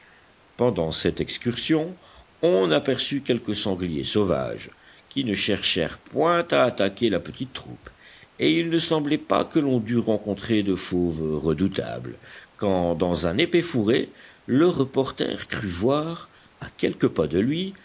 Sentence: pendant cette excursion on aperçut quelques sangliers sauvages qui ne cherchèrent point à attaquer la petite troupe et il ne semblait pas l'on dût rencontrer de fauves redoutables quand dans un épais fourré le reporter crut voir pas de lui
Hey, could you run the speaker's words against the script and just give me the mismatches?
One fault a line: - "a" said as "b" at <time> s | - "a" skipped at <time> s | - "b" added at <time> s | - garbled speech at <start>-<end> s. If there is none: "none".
- "que" added at 9.4 s
- "à quelques" added at 16.6 s